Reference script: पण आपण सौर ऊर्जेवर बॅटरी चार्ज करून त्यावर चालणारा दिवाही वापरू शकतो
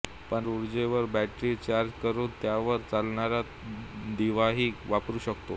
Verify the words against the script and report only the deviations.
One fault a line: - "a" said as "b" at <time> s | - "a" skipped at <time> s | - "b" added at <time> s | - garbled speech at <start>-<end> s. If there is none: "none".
- "आपण सौर" skipped at 0.5 s